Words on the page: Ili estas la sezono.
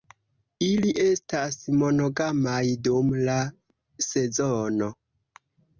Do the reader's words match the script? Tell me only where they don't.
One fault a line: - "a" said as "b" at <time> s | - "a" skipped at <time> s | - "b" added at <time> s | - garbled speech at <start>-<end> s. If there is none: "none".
- "monogamaj dum" added at 1.8 s